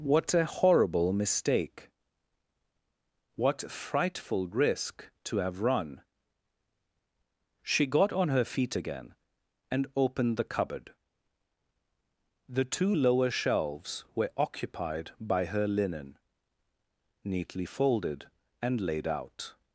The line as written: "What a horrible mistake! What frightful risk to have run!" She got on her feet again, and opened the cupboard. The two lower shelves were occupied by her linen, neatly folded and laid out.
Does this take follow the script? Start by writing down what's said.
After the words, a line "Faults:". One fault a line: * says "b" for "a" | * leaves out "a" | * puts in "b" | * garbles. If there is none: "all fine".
"What a horrible mistake! What frightful risk to have run!" She got on her feet again, and opened the cupboard. The two lower shelves were occupied by her linen, neatly folded and laid out.
Faults:
all fine